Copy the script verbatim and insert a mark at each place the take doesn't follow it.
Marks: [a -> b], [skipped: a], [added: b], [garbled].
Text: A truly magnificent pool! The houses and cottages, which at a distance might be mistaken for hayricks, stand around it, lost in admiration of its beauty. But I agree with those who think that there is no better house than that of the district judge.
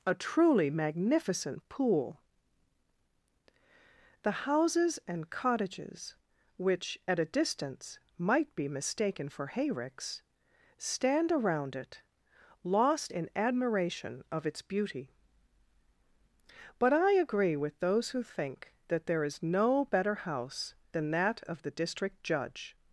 A truly magnificent pool! The houses and cottages, which at a distance might be mistaken for hayricks, stand around it, lost in admiration of its beauty. But I agree with those who think that there is no better house than that of the district judge.